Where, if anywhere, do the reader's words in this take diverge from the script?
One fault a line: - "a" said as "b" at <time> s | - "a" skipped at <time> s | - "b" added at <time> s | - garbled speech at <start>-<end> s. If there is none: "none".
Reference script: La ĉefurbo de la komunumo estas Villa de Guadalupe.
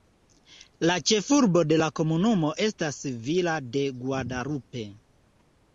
none